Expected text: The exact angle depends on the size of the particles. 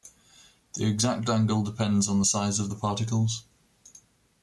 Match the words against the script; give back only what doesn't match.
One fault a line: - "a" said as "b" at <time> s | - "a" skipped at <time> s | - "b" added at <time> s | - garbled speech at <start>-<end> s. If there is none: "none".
none